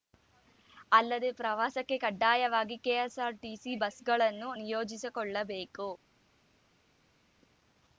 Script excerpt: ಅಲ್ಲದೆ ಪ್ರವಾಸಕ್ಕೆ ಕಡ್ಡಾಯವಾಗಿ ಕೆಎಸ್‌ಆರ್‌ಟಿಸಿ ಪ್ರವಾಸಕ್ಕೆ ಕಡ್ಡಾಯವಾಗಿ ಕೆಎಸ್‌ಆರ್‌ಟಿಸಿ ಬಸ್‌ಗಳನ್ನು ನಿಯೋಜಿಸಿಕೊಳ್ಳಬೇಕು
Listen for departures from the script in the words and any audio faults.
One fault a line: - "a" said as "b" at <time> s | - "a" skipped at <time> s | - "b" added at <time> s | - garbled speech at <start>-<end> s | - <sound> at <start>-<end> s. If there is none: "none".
- "ಪ್ರವಾಸಕ್ಕೆ ಕಡ್ಡಾಯವಾಗಿ ಕೆಎಸ್‌ಆರ್‌ಟಿಸಿ" skipped at 3.7 s